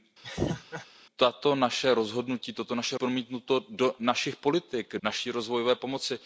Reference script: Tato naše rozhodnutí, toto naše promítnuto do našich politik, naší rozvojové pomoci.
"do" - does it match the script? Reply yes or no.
yes